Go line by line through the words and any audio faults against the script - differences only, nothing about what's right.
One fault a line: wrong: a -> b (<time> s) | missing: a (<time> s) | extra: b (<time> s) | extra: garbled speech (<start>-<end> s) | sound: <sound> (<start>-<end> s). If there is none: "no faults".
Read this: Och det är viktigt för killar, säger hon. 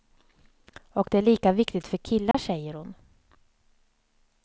extra: lika (1.2 s)
sound: dropout (2.3-2.3 s)